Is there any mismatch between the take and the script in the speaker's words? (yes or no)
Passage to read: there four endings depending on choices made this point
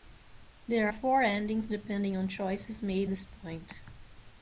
no